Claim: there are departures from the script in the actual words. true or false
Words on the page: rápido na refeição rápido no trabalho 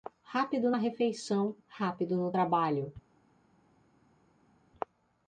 false